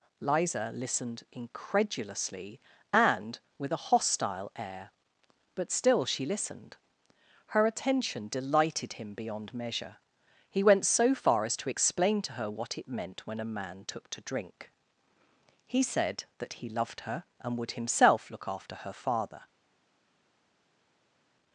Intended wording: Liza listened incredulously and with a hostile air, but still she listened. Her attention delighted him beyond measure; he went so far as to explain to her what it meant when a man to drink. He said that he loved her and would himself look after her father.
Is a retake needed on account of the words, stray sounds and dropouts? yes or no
yes